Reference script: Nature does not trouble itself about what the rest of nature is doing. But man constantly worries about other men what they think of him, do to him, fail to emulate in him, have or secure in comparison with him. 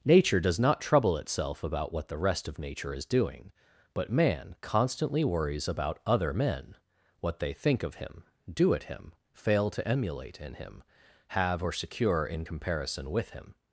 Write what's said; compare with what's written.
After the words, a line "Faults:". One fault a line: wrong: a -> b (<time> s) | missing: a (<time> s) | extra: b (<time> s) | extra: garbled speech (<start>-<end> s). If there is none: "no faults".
Nature does not trouble itself about what the rest of nature is doing. But man constantly worries about other men what they think of him, do at him, fail to emulate in him, have or secure in comparison with him.
Faults:
wrong: to -> at (8.7 s)